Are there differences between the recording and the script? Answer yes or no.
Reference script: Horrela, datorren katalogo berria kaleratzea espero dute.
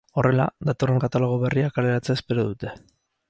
no